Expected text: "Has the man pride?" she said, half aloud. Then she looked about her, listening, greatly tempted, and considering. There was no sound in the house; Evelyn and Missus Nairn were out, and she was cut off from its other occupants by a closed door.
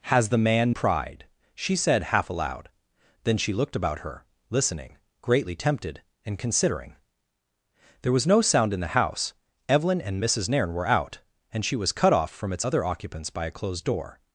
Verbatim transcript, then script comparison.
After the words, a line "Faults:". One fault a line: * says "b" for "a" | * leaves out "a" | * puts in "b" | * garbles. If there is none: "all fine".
"Has the man pride?" she said, half aloud. Then she looked about her, listening, greatly tempted, and considering. There was no sound in the house; Evelyn and Missus Nairn were out, and she was cut off from its other occupants by a closed door.
Faults:
all fine